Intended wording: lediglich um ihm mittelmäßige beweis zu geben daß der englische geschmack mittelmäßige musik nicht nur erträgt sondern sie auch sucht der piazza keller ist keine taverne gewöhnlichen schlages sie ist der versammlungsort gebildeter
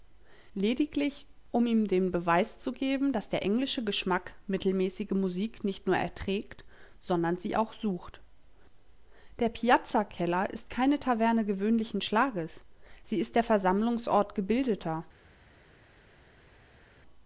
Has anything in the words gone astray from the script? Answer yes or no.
yes